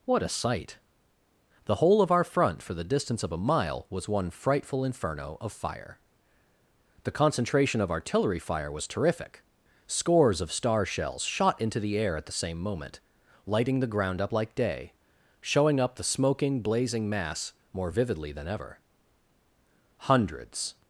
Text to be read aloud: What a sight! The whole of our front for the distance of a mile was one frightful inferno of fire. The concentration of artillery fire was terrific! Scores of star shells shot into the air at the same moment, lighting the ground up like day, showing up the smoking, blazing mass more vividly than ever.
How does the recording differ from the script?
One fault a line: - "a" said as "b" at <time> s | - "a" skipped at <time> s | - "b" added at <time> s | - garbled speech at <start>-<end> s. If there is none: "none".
- "Hundreds" added at 20.0 s